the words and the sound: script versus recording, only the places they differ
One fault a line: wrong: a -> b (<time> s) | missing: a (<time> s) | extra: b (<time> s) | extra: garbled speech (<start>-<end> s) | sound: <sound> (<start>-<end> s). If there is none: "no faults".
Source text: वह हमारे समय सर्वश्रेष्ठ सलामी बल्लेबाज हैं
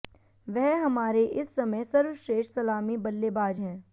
extra: इस (1.2 s)